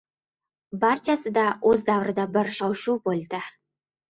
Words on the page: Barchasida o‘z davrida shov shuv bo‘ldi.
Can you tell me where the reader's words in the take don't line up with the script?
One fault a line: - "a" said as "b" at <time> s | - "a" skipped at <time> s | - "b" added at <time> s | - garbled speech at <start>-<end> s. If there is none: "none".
- "bir" added at 2.4 s